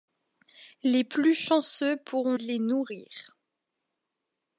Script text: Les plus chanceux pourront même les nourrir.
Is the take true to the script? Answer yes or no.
no